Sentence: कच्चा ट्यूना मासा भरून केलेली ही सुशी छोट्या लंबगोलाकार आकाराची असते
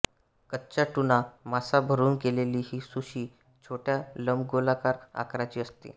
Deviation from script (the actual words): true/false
false